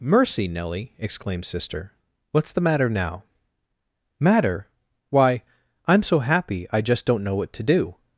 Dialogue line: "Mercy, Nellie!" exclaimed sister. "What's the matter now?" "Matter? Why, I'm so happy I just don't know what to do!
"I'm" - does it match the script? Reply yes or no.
yes